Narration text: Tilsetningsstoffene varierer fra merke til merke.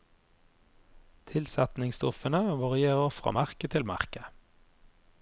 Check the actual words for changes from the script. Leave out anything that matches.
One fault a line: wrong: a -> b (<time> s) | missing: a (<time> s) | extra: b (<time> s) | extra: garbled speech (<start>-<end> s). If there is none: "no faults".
no faults